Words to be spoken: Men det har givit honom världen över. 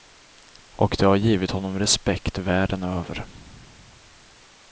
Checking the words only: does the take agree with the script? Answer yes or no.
no